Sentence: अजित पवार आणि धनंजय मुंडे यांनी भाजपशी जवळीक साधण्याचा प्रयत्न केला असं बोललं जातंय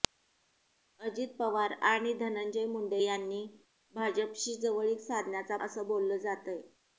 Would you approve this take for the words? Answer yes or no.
no